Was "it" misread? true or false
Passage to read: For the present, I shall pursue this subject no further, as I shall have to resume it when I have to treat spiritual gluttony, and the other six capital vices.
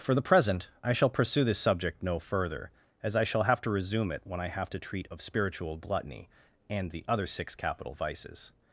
false